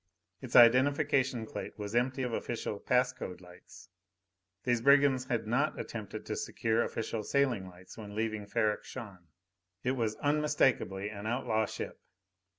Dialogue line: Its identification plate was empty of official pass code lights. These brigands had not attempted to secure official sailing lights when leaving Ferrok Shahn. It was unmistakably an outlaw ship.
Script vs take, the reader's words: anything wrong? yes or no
no